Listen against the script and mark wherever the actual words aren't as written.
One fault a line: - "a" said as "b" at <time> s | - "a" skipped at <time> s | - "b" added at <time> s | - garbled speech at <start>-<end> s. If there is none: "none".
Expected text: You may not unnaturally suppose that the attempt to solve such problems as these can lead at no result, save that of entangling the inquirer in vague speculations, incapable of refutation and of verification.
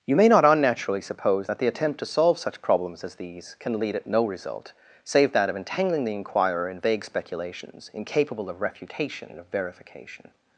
none